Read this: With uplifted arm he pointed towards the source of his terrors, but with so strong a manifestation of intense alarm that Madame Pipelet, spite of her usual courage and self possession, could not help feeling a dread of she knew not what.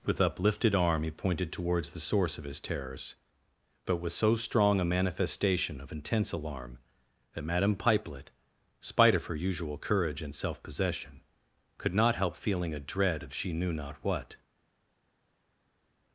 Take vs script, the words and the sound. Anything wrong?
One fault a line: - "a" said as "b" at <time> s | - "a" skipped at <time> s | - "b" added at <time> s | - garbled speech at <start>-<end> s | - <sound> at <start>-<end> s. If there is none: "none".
none